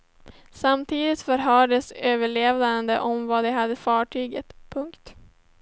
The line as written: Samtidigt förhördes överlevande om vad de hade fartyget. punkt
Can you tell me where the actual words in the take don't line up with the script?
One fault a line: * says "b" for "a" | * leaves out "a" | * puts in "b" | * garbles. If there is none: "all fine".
all fine